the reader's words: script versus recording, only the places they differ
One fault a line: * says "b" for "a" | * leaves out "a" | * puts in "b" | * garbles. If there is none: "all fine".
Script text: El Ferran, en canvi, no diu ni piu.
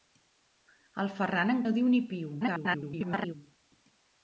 * leaves out "canvi"
* garbles